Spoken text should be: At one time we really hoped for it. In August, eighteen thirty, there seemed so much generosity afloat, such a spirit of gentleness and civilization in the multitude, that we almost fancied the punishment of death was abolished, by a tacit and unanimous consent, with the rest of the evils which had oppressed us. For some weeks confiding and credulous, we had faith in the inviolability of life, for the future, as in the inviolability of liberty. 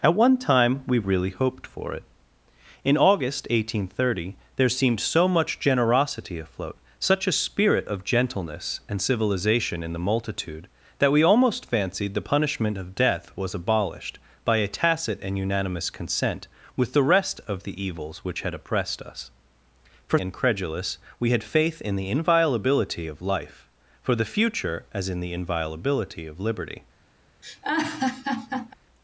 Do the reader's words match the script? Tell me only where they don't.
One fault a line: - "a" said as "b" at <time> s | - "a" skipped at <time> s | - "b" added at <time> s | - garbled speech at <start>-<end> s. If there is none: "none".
- "some weeks confiding" skipped at 20.2 s